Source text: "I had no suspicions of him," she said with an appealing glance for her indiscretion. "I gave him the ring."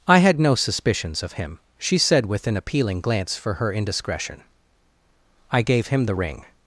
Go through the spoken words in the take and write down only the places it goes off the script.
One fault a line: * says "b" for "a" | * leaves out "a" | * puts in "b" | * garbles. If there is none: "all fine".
all fine